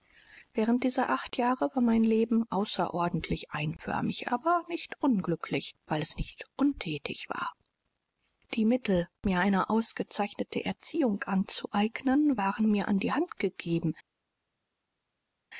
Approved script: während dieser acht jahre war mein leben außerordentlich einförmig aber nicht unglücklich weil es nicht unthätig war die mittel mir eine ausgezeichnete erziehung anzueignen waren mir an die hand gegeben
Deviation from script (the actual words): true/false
false